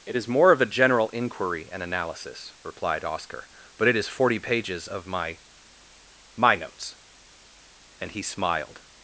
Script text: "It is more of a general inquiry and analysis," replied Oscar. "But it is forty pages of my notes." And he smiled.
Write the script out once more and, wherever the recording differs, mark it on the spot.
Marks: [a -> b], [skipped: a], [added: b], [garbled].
"It is more of a general inquiry and analysis," replied Oscar. "But it is forty pages of my [added: my] notes." And he smiled.